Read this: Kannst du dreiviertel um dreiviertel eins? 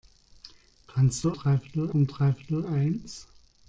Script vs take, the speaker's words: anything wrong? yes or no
no